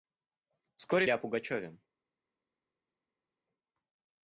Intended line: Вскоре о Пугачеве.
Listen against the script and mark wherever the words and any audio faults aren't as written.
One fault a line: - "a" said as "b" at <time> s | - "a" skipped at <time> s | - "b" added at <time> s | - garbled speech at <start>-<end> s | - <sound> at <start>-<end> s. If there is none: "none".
none